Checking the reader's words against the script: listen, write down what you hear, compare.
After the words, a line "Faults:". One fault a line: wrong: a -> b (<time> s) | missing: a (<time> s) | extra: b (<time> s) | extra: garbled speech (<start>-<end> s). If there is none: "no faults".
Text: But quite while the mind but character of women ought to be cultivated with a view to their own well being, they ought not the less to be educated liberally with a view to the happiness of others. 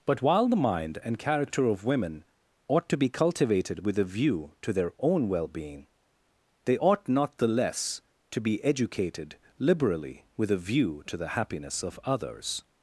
But while the mind and character of women ought to be cultivated with a view to their own well being, they ought not the less to be educated liberally with a view to the happiness of others.
Faults:
missing: quite (0.2 s)
wrong: but -> and (1.0 s)